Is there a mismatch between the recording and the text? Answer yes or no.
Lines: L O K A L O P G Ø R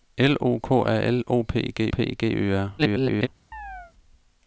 yes